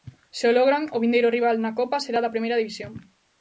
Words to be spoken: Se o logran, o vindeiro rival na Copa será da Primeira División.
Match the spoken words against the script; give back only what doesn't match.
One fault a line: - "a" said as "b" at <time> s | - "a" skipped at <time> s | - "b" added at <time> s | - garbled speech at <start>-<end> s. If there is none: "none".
none